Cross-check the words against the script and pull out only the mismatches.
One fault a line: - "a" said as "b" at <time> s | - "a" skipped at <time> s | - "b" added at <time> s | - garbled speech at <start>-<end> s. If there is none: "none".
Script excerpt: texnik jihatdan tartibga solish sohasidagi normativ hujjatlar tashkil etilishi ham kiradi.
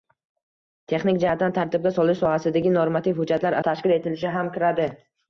none